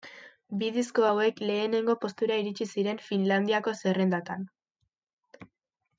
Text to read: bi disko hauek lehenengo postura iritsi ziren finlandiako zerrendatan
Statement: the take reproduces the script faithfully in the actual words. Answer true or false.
true